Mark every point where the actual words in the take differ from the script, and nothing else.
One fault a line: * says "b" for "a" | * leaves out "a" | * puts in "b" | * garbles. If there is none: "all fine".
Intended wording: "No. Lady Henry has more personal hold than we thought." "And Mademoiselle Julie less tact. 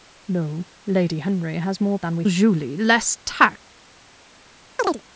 * leaves out "personal hold"
* leaves out "thought And Mademoiselle"